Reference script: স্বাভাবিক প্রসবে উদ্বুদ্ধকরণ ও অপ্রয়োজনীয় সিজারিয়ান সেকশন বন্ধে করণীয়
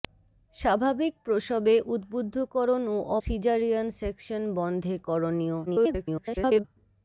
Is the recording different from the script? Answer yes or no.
yes